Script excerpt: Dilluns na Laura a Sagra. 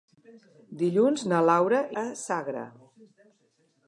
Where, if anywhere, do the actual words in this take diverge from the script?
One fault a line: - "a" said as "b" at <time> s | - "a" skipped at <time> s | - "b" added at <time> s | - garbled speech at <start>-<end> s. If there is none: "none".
none